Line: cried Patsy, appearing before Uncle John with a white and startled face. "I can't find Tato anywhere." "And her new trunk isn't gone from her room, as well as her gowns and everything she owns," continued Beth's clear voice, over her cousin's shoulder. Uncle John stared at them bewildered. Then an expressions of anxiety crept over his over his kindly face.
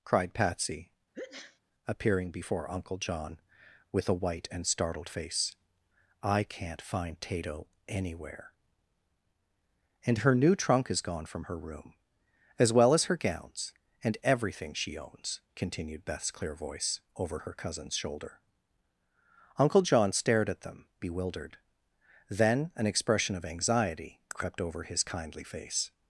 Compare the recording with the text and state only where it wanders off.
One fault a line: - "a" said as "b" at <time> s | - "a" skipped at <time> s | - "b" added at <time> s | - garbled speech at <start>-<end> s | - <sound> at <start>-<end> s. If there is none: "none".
- sneeze at 1.1-1.6 s
- "isn't" said as "is" at 10.9 s
- "expressions" said as "expression" at 22.9 s
- "over his" skipped at 25.0 s